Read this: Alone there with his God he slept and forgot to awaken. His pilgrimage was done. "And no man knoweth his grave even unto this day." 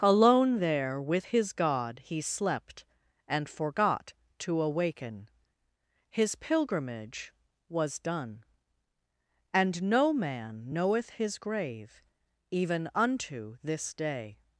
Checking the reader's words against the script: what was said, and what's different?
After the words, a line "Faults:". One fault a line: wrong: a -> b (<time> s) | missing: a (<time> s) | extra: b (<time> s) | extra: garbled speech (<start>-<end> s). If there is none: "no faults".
Alone there with his God he slept and forgot to awaken. His pilgrimage was done. "And no man knoweth his grave even unto this day."
Faults:
no faults